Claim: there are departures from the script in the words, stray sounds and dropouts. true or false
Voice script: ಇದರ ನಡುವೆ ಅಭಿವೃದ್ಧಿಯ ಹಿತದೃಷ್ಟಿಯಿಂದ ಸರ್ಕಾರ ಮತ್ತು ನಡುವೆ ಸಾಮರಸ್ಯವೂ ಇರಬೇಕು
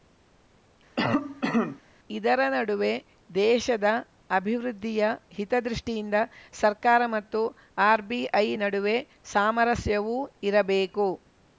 true